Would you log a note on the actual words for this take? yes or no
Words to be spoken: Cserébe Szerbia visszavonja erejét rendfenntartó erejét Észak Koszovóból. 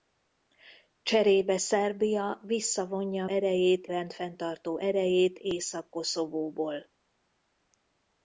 no